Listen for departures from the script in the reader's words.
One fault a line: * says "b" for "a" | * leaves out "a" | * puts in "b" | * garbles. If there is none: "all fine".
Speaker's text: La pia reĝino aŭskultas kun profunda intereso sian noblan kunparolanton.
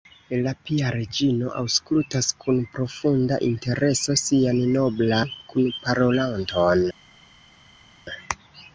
all fine